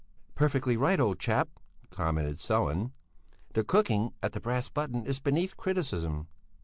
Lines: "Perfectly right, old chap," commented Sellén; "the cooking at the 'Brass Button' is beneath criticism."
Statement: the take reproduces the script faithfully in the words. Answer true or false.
true